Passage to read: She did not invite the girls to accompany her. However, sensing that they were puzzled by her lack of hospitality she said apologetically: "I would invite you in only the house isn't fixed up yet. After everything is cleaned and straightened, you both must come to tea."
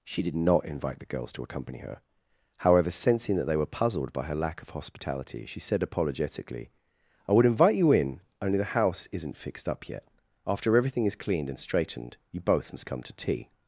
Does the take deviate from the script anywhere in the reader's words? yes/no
no